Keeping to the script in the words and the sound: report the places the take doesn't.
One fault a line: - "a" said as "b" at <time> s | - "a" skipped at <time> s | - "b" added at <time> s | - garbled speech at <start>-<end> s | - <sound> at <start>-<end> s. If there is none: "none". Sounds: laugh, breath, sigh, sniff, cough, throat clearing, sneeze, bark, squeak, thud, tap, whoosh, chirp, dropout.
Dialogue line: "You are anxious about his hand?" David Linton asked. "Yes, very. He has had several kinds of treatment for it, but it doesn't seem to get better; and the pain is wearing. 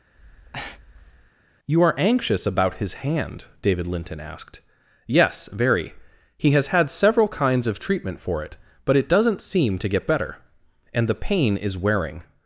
- breath at 0.1-1.3 s